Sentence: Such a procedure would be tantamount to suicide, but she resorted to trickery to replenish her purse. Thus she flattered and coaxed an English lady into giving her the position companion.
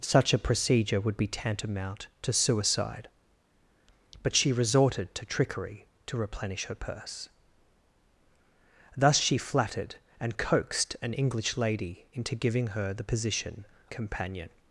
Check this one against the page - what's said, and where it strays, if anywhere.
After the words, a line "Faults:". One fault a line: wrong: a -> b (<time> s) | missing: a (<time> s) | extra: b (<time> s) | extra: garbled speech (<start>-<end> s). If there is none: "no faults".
Such a procedure would be tantamount to suicide, but she resorted to trickery to replenish her purse. Thus she flattered and coaxed an English lady into giving her the position companion.
Faults:
no faults